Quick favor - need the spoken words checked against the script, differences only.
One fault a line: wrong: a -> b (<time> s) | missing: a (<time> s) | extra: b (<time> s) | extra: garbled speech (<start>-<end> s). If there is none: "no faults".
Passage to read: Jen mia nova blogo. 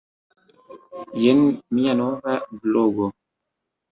no faults